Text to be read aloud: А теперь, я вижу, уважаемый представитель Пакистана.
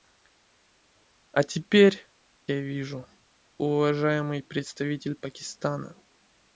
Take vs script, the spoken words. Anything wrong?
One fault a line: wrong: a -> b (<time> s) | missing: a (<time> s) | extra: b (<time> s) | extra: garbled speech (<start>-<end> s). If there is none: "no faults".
no faults